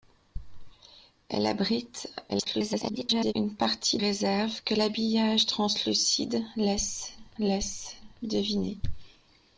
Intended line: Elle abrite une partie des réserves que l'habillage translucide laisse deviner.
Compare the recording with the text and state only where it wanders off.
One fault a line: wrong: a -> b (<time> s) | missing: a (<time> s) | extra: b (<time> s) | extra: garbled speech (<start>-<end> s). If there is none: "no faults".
extra: garbled speech (2.3-3.3 s)
missing: des (4.0 s)
extra: laisse (7.4 s)